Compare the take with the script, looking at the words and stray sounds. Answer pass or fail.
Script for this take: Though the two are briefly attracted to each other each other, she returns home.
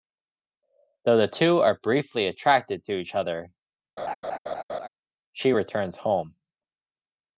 fail